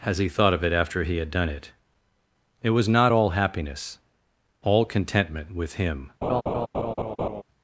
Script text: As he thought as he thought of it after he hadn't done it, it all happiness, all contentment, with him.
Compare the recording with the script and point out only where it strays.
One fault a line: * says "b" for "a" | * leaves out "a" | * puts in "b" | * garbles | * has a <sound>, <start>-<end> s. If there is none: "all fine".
* leaves out "as he thought"
* says "had" for "hadn't"
* puts in "was not"
* has a laugh, 6.2-7.4 s